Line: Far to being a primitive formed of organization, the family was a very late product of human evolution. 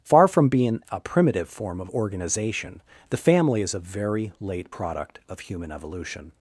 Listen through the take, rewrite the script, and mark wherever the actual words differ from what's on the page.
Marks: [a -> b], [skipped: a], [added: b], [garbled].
Far [to -> from] being a primitive [formed -> form] of organization, the family [was -> is] a very late product of human evolution.